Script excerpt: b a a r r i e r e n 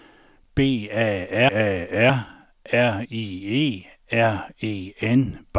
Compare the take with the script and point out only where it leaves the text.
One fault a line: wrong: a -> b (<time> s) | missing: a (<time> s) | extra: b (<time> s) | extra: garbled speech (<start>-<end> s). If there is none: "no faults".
no faults